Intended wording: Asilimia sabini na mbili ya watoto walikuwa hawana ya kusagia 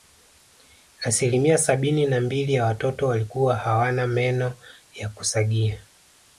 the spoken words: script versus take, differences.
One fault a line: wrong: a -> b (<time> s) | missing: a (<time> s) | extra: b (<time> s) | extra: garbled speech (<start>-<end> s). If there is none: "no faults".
extra: meno (4.1 s)